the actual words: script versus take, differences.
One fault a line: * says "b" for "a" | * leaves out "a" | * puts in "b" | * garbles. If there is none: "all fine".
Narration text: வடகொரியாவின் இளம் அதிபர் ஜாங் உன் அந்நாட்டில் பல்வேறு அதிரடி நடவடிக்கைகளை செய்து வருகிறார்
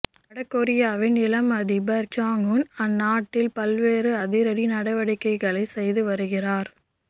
all fine